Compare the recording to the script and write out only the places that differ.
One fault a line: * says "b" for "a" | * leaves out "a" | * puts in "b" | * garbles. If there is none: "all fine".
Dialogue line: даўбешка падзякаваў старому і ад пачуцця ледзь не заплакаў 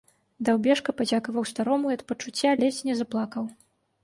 all fine